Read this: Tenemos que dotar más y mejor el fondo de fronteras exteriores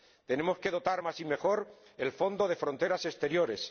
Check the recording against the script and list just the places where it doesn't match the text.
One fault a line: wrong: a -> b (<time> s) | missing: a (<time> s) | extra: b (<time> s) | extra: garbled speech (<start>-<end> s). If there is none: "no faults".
no faults